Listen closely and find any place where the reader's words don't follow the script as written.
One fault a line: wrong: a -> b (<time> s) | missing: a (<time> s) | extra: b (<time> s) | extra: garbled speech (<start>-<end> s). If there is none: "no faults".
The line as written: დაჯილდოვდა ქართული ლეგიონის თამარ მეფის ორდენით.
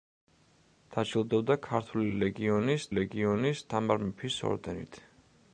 extra: ლეგიონის (3.0 s)